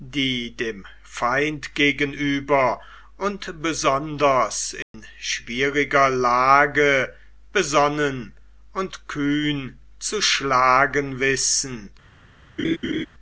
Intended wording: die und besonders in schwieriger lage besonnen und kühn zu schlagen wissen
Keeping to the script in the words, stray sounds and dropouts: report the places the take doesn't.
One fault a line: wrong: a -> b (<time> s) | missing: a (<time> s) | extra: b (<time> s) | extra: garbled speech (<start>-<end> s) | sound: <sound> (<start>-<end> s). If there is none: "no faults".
extra: dem feind gegenüber (0.6 s)
sound: dropout (4.8-4.9 s)
sound: laugh (12.6-13.1 s)